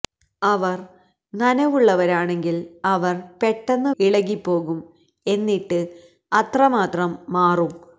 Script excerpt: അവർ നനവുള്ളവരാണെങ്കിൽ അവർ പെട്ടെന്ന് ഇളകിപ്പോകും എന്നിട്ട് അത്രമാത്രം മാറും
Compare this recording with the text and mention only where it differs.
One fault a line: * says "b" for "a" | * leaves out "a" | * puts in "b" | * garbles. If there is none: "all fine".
all fine